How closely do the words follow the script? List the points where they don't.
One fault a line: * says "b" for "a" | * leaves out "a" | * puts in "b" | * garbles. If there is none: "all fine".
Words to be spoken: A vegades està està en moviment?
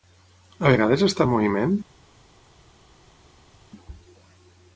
* leaves out "està"